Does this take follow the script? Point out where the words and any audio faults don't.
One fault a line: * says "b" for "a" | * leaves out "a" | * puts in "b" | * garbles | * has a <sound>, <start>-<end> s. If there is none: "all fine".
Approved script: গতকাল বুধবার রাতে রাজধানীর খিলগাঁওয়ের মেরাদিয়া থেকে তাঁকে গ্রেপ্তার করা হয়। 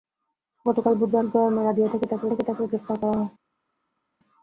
* says "খিলগাঁওয়ের মেরাদিয়া থেকে তাঁকে" for "রাতে রাজধানীর খিলগাঁওয়ের মেরাদিয়া"